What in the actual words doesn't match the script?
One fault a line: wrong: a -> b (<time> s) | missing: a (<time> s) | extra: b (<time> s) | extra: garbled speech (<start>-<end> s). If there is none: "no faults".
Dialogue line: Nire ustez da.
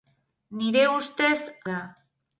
no faults